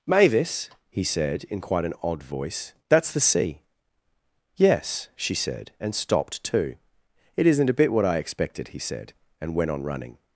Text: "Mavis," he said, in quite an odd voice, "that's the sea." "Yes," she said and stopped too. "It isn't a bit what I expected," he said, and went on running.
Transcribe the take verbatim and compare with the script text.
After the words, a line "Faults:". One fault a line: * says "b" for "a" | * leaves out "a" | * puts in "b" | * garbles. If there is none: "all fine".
"Mavis," he said, in quite an odd voice, "that's the sea." "Yes," she said and stopped too. "It isn't a bit what I expected," he said, and went on running.
Faults:
all fine